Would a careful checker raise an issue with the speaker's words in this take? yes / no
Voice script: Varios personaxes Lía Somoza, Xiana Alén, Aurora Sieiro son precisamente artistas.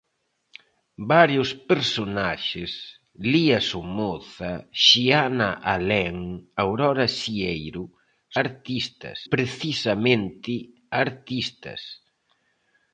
yes